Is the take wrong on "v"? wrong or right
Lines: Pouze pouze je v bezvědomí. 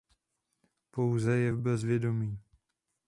right